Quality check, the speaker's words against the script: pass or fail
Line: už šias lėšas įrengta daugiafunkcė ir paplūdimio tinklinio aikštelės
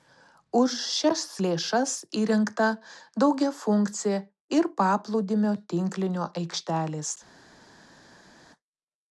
pass